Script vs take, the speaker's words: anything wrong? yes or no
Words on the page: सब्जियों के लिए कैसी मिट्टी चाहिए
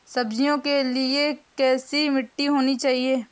yes